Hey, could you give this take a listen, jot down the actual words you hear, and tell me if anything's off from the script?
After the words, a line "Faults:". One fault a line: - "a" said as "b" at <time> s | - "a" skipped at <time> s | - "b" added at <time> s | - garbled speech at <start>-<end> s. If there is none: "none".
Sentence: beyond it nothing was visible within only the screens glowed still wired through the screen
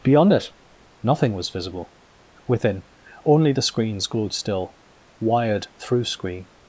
beyond it nothing was visible within only the screens glowed still wired through screen
Faults:
- "the" skipped at 6.0 s